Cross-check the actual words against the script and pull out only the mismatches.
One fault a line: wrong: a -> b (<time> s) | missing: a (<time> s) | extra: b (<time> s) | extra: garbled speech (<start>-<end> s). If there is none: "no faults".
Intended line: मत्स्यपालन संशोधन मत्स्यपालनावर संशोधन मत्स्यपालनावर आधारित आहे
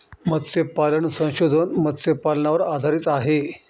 missing: संशोधन मत्स्यपालनावर (2.6 s)